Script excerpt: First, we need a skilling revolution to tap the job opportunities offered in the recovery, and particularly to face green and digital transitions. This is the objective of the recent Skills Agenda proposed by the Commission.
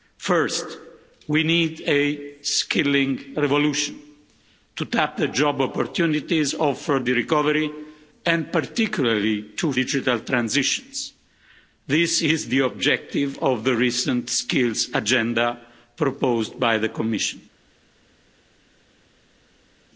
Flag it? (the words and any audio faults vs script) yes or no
yes